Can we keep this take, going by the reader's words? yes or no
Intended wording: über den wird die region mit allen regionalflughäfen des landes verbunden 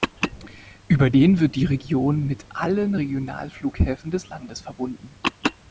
yes